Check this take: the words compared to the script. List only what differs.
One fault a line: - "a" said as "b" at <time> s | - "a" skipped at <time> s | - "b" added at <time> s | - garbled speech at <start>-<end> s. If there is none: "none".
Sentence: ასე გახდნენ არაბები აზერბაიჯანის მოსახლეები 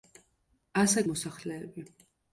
- "გახდნენ არაბები აზერბაიჯანის" skipped at 1.0 s